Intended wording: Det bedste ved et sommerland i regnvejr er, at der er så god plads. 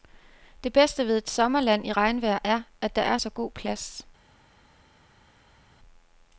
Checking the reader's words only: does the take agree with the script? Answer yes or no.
yes